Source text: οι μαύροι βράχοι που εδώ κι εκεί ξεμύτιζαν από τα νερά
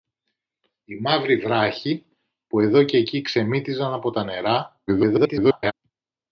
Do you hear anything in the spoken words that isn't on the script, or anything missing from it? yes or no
yes